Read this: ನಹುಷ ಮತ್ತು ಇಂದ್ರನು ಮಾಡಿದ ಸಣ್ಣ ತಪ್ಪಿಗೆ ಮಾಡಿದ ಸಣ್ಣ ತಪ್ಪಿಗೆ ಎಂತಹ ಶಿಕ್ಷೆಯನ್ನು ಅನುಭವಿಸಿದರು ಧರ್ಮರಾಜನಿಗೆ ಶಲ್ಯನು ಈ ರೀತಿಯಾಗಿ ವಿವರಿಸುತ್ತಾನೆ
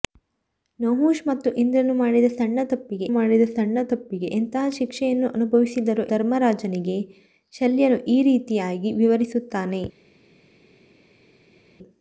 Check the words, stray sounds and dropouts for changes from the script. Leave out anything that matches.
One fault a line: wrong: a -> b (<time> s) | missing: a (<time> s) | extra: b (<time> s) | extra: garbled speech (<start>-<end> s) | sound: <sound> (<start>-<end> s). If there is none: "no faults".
no faults